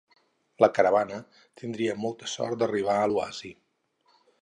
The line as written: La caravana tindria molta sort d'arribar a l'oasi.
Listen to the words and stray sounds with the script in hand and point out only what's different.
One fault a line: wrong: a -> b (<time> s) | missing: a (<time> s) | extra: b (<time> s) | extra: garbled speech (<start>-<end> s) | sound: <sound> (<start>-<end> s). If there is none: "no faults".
no faults